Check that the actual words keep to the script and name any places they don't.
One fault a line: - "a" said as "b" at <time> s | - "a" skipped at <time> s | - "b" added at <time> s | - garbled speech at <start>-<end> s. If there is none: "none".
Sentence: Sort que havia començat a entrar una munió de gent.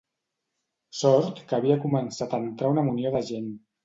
none